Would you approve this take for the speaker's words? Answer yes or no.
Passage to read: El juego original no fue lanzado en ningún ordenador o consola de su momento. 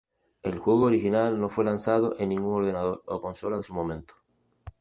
yes